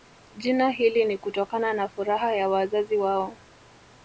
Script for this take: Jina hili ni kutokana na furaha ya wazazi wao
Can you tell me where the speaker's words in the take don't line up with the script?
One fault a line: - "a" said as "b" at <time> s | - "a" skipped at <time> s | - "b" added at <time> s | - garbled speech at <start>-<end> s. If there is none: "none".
none